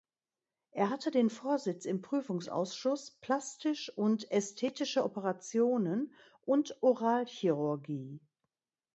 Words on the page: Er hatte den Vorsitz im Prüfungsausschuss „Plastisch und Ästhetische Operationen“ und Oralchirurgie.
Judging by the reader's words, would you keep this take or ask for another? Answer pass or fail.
pass